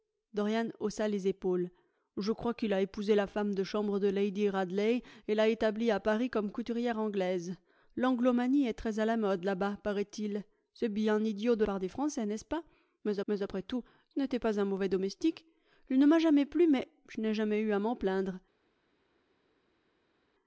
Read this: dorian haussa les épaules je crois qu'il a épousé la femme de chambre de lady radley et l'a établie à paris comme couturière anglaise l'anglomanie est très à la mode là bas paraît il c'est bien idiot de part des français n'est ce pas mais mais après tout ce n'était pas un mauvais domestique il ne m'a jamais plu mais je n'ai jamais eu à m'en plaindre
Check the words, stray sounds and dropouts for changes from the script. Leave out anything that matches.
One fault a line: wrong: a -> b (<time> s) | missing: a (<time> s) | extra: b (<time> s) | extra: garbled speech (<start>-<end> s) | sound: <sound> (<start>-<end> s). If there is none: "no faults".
no faults